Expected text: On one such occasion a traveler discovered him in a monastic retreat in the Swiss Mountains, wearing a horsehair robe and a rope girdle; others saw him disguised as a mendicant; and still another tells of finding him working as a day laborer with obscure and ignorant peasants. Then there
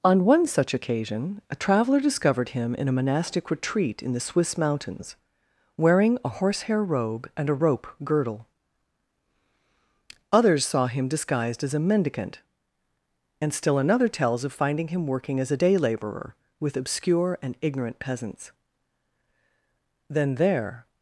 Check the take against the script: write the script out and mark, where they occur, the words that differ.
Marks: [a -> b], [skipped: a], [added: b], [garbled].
On one such occasion a traveler discovered him in a monastic retreat in the Swiss Mountains, wearing a horsehair robe and a rope girdle; others saw him disguised as a mendicant; and still another tells of finding him working as a day laborer with obscure and ignorant peasants. Then there